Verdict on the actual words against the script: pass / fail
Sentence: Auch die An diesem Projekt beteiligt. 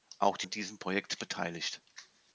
pass